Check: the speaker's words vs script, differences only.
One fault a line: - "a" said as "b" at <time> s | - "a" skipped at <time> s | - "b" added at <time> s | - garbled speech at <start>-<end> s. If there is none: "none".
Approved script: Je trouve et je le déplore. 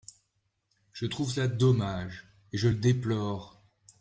- "cela dommage" added at 1.3 s